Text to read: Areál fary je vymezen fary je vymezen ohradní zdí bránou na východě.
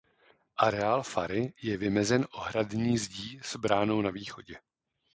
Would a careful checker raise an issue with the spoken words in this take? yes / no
yes